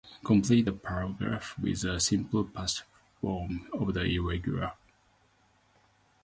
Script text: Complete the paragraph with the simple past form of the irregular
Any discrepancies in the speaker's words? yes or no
no